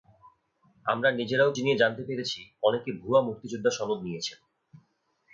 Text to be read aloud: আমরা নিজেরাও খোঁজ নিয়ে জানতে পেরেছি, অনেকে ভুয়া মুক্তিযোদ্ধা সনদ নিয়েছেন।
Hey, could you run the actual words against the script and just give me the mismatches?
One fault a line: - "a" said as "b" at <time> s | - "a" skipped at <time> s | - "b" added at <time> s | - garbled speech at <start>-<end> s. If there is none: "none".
- "খোঁজ" skipped at 1.5 s